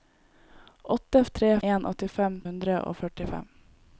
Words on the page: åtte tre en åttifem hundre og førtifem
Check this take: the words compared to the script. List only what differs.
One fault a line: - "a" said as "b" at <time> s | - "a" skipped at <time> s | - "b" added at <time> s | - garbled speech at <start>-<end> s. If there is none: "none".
none